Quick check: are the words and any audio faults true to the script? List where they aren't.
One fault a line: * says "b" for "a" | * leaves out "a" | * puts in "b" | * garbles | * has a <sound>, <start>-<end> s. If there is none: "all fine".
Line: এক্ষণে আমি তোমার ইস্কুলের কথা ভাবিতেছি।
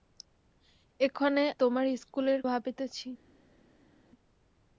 * leaves out "আমি"
* leaves out "কথা"